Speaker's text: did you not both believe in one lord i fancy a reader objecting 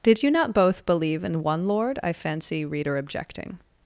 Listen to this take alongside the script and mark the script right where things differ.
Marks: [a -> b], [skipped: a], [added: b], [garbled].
did you not both believe in one lord i fancy [skipped: a] reader objecting